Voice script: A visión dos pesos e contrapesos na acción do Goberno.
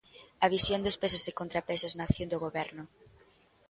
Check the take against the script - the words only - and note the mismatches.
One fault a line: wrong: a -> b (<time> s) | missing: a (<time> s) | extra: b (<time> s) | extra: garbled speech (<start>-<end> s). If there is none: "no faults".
no faults